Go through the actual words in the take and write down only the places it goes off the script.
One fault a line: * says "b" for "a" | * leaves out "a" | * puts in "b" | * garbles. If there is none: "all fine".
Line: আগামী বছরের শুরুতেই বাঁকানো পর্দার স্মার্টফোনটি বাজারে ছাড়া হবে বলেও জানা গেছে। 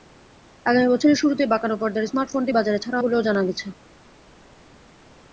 * leaves out "হবে"